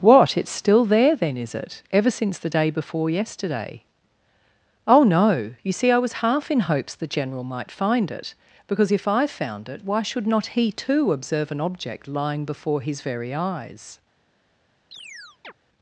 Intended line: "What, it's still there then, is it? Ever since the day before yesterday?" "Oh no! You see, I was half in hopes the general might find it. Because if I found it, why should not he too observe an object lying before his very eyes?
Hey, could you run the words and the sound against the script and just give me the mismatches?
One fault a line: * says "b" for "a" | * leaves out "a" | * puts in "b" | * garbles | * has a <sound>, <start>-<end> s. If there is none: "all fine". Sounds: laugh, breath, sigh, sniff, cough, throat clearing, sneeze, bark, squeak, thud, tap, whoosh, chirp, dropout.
* has a chirp, 14.9-15.5 s